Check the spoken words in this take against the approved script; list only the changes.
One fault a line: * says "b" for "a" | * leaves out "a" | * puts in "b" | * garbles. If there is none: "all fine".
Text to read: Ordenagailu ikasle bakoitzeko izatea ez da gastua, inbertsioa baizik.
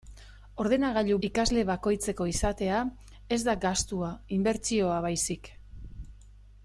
all fine